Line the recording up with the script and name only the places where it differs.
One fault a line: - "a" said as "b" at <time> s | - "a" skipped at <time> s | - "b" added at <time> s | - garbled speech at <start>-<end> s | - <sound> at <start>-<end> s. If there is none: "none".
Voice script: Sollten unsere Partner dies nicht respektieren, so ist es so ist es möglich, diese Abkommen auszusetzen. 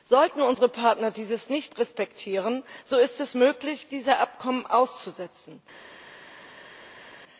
- "so ist es" skipped at 3.4 s